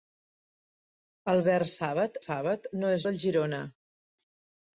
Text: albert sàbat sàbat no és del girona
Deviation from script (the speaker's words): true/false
false